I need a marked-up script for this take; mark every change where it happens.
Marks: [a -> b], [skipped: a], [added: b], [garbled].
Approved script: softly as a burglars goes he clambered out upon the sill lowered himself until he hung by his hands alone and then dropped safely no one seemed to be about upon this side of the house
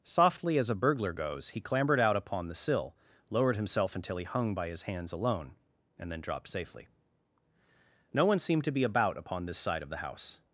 softly as a [burglars -> burglar] goes he clambered out upon the sill lowered himself until he hung by his hands alone and then dropped safely no one seemed to be about upon this side of the house